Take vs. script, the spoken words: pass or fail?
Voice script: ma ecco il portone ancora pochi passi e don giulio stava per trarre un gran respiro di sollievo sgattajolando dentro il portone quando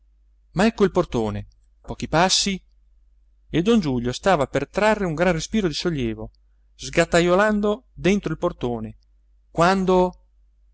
fail